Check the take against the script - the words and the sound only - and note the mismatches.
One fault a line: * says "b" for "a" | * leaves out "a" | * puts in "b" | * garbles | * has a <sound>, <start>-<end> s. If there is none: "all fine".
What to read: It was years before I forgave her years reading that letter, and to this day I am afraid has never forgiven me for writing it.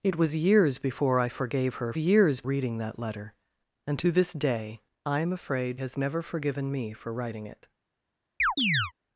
* has a chirp, 8.4-8.9 s